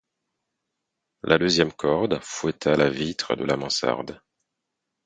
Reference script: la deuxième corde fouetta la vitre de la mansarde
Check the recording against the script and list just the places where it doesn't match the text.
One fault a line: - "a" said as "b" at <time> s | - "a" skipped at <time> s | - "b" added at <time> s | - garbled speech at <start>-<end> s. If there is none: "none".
none